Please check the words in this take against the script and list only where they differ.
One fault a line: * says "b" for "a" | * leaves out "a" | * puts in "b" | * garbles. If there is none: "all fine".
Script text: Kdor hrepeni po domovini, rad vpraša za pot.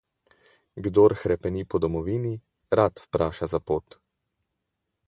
all fine